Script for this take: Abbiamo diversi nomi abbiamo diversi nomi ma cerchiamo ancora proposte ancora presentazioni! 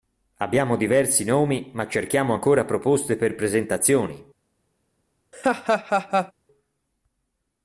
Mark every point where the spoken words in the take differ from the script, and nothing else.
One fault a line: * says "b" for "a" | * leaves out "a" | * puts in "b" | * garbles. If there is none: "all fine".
* leaves out "abbiamo diversi nomi"
* says "per" for "ancora"